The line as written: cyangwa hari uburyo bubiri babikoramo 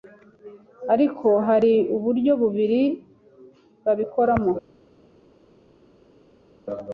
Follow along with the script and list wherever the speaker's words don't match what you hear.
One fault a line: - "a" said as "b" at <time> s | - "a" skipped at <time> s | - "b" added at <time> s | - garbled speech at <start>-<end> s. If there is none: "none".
- "cyangwa" said as "ariko" at 0.9 s